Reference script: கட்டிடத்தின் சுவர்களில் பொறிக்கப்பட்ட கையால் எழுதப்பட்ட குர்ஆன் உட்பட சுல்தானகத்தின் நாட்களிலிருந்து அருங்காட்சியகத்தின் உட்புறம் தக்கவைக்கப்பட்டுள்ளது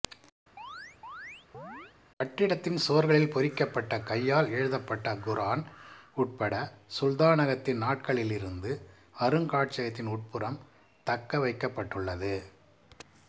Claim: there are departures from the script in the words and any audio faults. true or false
true